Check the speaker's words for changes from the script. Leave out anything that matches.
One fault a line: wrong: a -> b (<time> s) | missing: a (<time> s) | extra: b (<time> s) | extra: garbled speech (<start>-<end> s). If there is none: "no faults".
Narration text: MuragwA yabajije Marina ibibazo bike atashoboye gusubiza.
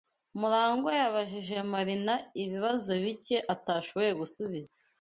no faults